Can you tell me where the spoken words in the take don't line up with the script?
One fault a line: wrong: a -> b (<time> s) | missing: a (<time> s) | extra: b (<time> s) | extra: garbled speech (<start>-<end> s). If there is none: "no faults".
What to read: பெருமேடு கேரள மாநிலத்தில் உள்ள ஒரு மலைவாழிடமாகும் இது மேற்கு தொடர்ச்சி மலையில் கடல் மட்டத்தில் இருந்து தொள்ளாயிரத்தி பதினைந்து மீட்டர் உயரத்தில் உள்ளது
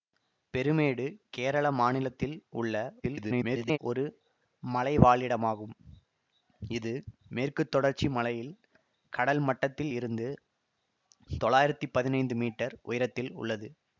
extra: garbled speech (3.0-3.8 s)